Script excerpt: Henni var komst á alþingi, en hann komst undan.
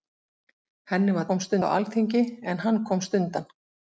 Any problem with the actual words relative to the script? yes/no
no